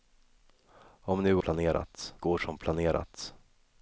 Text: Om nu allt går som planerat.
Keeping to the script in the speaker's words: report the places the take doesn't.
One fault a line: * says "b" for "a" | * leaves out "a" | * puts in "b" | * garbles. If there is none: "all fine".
* says "planerat" for "allt"